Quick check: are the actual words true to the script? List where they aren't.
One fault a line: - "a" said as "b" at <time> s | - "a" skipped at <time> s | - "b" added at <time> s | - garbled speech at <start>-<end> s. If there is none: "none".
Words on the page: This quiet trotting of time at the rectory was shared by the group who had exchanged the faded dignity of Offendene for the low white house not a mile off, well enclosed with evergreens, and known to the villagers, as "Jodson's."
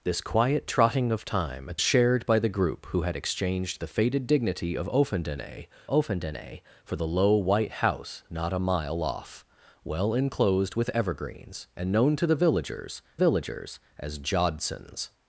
- "the rectory was" skipped at 1.8 s
- "Offendene" added at 5.9 s
- "villagers" added at 13.2 s